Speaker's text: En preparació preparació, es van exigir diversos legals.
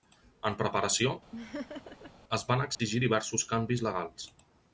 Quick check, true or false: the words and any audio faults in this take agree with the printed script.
false